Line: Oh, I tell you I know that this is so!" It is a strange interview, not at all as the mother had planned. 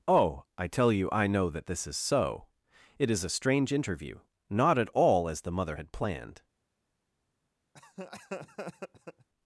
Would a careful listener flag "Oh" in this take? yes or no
no